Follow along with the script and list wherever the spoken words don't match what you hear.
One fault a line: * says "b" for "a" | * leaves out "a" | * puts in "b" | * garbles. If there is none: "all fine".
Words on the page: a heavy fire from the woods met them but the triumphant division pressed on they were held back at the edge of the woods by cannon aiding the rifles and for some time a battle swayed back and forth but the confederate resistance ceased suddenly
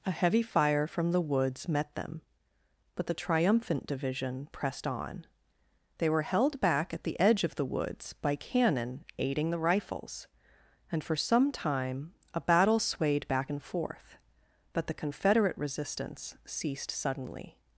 all fine